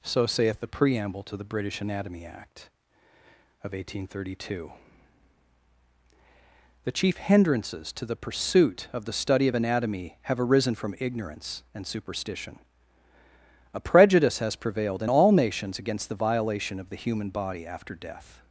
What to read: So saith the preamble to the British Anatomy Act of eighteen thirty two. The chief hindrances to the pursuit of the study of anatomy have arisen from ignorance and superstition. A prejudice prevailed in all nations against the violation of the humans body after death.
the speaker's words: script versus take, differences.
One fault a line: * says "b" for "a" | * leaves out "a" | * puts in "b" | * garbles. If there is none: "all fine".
* puts in "has"
* says "human" for "humans"